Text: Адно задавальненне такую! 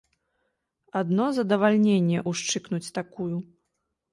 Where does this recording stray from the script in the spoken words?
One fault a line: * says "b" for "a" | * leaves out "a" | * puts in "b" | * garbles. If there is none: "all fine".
* puts in "ўшчыкнуць"